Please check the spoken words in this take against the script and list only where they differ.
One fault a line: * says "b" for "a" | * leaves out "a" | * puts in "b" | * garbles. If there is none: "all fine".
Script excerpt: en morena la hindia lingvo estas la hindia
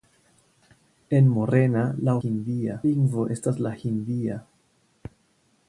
all fine